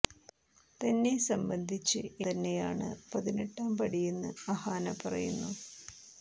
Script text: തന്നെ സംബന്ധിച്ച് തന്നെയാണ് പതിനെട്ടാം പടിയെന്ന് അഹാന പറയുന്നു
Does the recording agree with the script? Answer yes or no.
yes